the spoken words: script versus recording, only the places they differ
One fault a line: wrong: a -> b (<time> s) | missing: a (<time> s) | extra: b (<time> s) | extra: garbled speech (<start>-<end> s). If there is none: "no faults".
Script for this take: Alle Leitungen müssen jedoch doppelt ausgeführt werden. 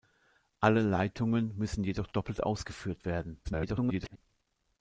extra: garbled speech (3.4-4.2 s)